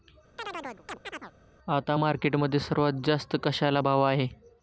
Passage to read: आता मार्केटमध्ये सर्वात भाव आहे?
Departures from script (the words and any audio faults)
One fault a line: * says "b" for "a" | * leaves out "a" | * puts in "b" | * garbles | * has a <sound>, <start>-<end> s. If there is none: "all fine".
* has a chirp, 0.4-1.3 s
* puts in "जास्त कशाला"